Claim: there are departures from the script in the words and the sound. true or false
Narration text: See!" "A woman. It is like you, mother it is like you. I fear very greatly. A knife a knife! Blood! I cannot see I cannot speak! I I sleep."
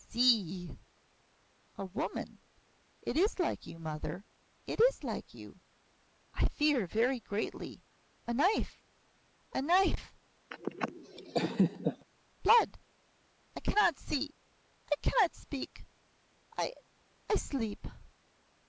true